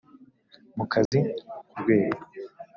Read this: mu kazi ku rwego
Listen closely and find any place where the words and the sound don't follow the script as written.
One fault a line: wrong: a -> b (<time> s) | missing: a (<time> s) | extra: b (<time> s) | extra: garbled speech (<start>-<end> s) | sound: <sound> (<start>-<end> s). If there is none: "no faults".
sound: dropout (1.1-1.1 s)